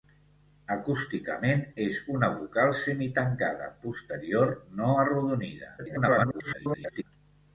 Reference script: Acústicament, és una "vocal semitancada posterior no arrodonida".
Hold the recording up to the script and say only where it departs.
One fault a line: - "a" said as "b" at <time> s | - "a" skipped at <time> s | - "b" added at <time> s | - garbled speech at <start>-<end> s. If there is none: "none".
- garbled speech at 5.8-7.0 s